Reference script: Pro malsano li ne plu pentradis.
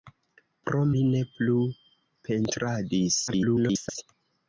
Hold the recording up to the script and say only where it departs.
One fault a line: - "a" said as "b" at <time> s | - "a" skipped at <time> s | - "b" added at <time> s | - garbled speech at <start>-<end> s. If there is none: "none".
- "malsano" skipped at 0.8 s
- garbled speech at 3.3-4.0 s